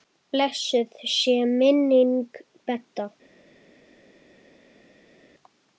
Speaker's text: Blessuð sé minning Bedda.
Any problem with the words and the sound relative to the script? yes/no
no